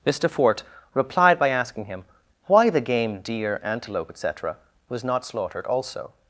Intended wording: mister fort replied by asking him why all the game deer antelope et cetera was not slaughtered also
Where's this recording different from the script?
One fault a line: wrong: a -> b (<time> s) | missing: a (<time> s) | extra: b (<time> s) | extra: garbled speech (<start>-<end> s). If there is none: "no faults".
missing: all (2.7 s)